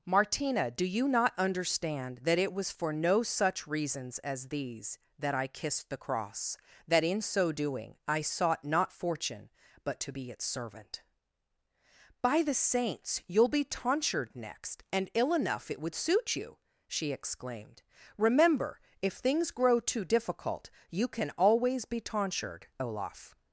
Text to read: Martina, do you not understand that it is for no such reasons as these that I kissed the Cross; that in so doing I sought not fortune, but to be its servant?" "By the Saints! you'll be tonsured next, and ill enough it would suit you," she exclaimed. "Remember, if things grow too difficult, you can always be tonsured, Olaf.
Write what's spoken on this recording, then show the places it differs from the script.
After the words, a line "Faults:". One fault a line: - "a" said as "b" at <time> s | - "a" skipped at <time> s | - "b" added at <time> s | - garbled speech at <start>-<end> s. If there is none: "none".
Martina, do you not understand that it was for no such reasons as these that I kissed the Cross; that in so doing I sought not fortune, but to be its servant?" "By the Saints! you'll be tonsured next, and ill enough it would suit you," she exclaimed. "Remember, if things grow too difficult, you can always be tonsured, Olaf.
Faults:
- "is" said as "was" at 2.5 s